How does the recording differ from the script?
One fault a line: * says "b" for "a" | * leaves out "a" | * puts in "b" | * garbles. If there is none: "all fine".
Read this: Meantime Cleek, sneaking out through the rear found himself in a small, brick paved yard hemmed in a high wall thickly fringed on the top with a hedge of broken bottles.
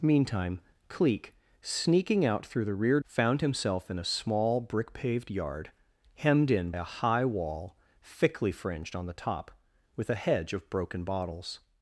all fine